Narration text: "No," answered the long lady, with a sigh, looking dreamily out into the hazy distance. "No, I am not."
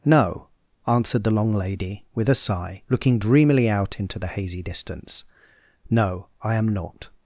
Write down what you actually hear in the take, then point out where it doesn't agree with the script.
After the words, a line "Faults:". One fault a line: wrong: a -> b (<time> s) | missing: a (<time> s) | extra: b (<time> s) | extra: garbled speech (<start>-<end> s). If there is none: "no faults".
"No," answered the long lady, with a sigh, looking dreamily out into the hazy distance. "No, I am not."
Faults:
no faults